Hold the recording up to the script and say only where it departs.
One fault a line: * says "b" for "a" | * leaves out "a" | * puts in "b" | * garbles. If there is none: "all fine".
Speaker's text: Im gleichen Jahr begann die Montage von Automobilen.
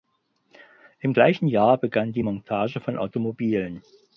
all fine